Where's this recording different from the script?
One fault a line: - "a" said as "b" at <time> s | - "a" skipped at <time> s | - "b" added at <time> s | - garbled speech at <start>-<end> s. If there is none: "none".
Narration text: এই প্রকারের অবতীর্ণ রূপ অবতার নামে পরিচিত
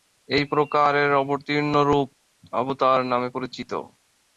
none